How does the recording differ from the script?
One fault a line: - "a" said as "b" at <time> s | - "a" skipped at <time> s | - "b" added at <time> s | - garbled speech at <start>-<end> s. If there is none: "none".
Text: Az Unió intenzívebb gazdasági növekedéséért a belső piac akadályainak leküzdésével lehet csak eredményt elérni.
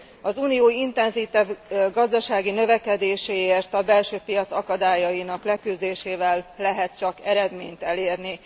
none